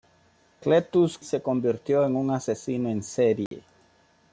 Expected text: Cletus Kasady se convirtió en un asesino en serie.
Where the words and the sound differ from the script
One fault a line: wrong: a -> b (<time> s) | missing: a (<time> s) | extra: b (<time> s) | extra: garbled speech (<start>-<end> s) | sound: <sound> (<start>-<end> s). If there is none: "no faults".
missing: Kasady (1.2 s)
sound: dropout (3.5-3.5 s)